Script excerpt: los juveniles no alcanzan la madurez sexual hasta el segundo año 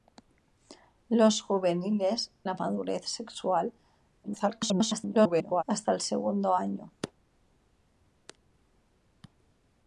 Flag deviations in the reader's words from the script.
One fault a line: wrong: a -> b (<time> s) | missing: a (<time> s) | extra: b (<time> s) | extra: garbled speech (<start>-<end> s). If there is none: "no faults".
missing: no alcanzan (2.3 s)
extra: garbled speech (4.2-5.6 s)